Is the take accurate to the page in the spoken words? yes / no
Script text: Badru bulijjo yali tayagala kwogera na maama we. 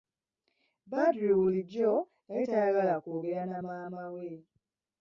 yes